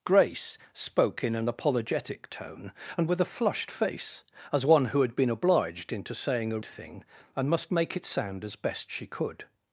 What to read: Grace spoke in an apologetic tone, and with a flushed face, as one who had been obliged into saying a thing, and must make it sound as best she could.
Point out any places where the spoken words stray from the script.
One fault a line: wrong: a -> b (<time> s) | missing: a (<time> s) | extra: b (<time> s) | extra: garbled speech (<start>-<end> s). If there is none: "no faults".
no faults